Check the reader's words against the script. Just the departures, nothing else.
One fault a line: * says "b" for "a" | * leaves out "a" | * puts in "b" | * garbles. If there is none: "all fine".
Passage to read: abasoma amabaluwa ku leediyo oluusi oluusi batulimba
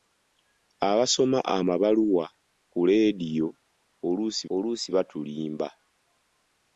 all fine